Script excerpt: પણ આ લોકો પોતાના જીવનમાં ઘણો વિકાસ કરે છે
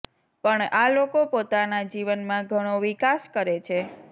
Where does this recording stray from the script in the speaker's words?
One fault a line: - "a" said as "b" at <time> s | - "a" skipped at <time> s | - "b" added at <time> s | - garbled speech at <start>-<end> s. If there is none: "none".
none